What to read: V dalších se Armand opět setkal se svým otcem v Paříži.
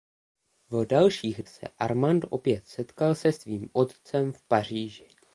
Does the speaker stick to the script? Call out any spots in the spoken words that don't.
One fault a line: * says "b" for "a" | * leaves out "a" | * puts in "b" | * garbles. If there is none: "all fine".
all fine